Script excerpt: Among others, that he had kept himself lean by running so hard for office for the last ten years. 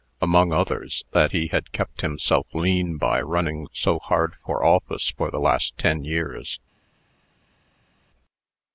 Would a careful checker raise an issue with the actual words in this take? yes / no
no